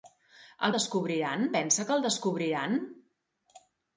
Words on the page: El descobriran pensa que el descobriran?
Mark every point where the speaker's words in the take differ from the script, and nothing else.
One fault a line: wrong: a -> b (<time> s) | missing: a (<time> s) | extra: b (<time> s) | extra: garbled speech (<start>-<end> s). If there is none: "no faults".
no faults